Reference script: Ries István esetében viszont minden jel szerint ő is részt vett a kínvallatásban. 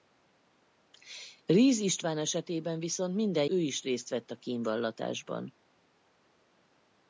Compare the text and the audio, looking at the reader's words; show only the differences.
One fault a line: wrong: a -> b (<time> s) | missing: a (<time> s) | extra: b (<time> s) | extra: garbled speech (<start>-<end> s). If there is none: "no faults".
missing: jel szerint (3.5 s)